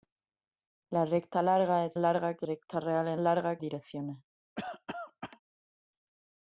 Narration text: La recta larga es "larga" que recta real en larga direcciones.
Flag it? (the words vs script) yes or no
no